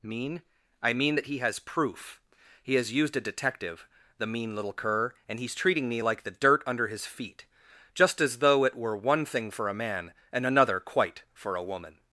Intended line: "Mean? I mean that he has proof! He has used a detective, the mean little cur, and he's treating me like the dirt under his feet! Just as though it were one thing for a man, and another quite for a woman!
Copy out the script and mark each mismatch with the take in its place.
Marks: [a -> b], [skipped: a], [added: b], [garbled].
"Mean? I mean that he has proof! He has used a detective, the mean little cur, and he's treating me like the dirt under his feet! Just as though it were one thing for a man, and another quite for a woman!